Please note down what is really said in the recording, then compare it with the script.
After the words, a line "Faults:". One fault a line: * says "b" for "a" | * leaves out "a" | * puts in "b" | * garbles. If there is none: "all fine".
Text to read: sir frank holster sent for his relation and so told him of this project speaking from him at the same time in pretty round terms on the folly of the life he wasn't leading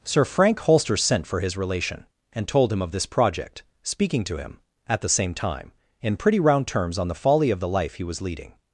sir frank holster sent for his relation and told him of this project speaking to him at the same time in pretty round terms on the folly of the life he was leading
Faults:
* leaves out "so"
* says "to" for "from"
* says "was" for "wasn't"